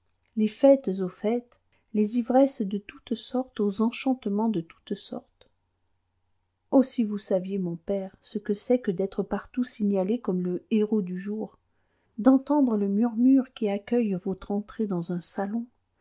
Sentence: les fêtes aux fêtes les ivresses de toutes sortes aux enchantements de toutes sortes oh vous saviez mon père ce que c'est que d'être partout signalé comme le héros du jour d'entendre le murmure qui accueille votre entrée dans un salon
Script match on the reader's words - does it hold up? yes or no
no